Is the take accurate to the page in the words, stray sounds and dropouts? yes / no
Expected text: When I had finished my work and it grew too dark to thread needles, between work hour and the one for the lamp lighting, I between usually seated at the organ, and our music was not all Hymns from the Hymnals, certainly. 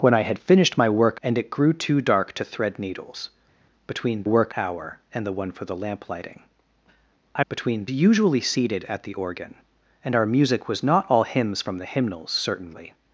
yes